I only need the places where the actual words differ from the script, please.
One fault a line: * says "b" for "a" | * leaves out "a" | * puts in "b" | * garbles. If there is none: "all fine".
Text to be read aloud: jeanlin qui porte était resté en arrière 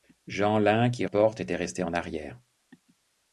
all fine